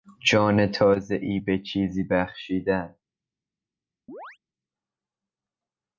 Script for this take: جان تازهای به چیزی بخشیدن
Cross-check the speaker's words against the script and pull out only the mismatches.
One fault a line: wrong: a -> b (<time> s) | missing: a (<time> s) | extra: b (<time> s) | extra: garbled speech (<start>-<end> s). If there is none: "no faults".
no faults